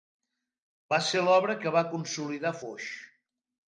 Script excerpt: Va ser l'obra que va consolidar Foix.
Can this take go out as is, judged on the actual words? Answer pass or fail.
pass